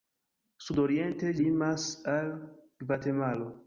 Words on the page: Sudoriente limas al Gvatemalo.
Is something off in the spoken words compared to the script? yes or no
no